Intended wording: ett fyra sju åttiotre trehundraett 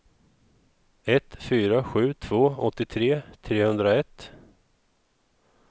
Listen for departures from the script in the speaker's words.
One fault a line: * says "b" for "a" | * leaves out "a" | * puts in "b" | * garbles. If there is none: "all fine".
* puts in "två"